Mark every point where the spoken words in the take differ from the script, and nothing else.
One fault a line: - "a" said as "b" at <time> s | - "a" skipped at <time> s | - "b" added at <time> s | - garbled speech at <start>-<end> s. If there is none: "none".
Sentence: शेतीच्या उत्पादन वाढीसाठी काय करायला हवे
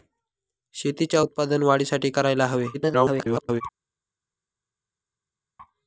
- "काय" skipped at 2.1 s
- garbled speech at 2.7-3.6 s